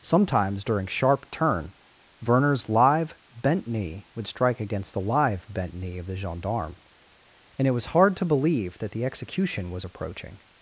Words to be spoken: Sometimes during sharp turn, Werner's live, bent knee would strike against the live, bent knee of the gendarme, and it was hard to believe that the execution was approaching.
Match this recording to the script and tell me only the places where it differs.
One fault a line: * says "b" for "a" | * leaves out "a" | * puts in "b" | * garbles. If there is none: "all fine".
all fine